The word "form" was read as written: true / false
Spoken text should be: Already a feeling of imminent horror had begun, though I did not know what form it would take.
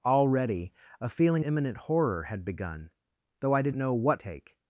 false